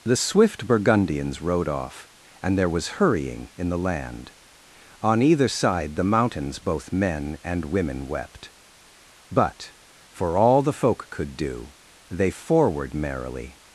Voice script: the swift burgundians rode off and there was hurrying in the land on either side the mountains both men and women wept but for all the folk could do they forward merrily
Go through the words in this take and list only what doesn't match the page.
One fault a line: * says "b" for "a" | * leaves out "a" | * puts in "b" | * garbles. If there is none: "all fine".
all fine